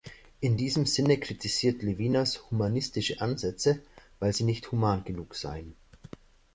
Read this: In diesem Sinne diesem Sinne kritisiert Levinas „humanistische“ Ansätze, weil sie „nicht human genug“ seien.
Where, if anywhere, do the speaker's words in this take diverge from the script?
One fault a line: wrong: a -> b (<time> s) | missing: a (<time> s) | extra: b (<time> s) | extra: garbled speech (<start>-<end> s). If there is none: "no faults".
missing: diesem Sinne (1.2 s)